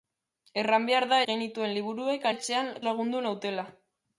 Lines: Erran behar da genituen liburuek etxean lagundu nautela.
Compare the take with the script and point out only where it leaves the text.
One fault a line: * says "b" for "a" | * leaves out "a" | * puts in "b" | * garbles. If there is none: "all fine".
all fine